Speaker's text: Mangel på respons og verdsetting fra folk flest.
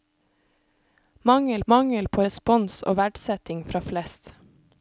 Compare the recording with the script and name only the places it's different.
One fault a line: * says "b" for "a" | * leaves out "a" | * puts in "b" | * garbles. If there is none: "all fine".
* puts in "mangel"
* leaves out "folk"